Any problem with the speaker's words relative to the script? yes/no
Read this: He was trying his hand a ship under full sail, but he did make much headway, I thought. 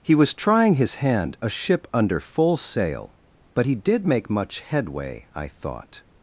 no